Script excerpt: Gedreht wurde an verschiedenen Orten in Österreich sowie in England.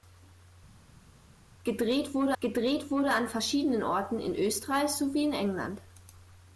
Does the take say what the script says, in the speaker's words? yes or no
no